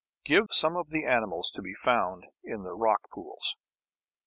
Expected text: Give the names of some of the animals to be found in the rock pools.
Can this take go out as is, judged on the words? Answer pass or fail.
fail